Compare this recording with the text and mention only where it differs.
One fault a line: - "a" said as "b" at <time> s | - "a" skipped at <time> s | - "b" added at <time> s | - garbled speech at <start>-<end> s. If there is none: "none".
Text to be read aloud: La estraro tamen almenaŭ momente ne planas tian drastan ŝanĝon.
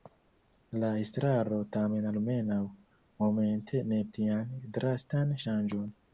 - "planas" skipped at 4.0 s